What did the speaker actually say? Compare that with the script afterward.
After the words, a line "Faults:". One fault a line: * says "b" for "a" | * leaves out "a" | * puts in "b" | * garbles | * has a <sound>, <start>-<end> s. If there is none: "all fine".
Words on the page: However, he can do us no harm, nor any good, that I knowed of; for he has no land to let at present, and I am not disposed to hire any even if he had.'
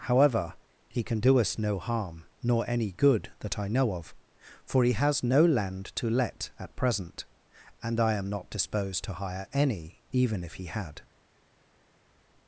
However, he can do us no harm, nor any good, that I know of; for he has no land to let at present, and I am not disposed to hire any even if he had.'
Faults:
* says "know" for "knowed"